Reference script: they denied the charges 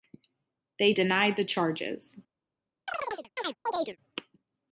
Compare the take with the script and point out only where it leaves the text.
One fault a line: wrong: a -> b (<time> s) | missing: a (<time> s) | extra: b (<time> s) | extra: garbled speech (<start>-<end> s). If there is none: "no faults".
no faults